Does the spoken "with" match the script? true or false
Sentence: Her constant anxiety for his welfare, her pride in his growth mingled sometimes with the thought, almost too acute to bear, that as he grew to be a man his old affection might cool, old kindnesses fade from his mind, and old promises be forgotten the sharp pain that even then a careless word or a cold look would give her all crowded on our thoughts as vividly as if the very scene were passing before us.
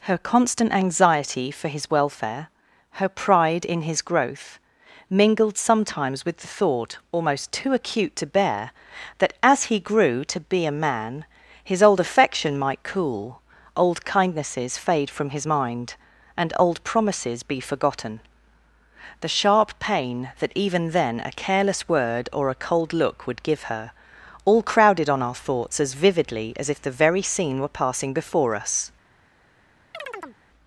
true